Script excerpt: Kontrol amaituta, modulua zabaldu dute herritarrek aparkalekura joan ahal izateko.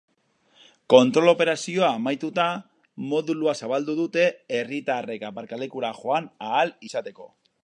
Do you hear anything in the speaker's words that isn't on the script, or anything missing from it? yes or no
yes